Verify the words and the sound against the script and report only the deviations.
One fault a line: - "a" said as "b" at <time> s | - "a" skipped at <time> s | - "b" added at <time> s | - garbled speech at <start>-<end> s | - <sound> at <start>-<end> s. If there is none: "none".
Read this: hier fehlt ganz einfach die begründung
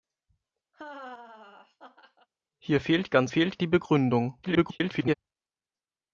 - laugh at 0.7-2.3 s
- "einfach" said as "fehlt" at 3.3 s
- garbled speech at 4.4-5.1 s